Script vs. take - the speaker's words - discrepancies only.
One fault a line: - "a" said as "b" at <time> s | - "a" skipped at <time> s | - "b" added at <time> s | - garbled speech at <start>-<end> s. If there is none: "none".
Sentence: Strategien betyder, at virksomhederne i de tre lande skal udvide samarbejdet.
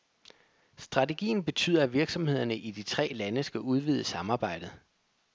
none